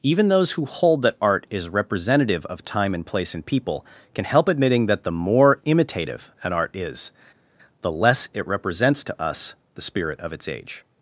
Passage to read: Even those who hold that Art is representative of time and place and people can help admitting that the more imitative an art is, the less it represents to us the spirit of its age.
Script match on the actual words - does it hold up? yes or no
yes